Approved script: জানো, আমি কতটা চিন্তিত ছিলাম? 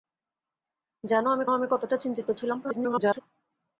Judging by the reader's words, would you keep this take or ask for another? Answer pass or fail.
fail